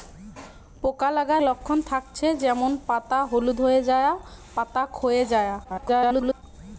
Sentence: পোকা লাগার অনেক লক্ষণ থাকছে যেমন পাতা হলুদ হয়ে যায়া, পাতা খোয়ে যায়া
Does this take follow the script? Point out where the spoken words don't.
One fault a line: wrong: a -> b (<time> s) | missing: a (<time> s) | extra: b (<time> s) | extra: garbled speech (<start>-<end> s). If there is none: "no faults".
missing: অনেক (1.4 s)
extra: garbled speech (5.6-6.4 s)